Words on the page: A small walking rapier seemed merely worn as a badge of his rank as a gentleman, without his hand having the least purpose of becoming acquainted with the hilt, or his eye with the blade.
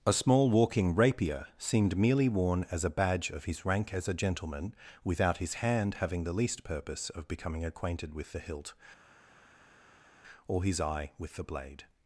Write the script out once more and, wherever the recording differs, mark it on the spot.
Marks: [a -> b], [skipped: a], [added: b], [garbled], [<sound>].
A small walking rapier seemed merely worn as a badge of his rank as a gentleman, without his hand having the least purpose of becoming acquainted with the hilt, or his eye with the blade.